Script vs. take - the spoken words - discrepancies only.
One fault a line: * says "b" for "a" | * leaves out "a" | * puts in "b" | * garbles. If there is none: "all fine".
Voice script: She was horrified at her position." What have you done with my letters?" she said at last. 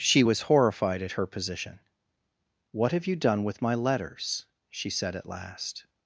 all fine